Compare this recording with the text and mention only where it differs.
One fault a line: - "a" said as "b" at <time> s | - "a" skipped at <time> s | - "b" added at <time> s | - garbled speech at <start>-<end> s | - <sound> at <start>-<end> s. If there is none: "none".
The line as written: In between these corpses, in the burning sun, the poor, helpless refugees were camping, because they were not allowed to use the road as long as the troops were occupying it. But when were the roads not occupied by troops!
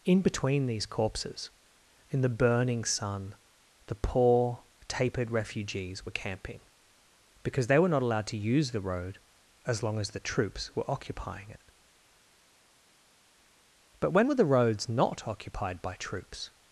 - "helpless" said as "tapered" at 4.9 s